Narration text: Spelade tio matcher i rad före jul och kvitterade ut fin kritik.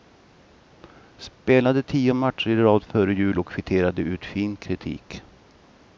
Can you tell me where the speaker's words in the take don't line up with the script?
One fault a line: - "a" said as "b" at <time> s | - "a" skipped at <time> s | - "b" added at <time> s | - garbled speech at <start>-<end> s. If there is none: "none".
none